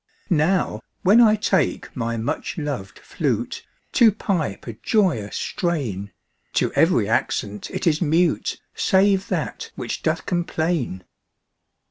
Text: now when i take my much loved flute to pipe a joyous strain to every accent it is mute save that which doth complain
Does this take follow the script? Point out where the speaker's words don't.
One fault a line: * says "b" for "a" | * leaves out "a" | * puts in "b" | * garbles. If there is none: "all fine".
all fine